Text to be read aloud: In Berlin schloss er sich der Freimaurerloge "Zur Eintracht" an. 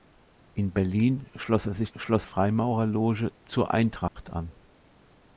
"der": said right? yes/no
no